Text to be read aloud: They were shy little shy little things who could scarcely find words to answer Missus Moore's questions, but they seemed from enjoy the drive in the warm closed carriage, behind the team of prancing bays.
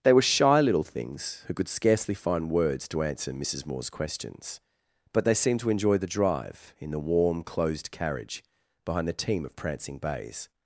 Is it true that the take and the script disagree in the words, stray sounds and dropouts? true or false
true